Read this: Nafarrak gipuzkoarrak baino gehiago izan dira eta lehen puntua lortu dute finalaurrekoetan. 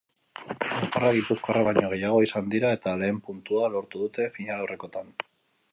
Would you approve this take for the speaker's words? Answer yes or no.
yes